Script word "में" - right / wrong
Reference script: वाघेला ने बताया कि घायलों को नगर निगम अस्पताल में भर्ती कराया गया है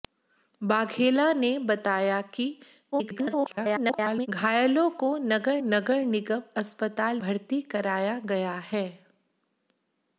wrong